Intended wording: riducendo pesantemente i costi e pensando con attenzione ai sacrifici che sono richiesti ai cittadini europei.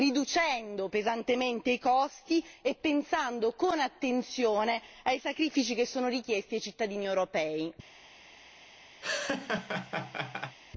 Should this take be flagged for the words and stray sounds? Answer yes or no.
yes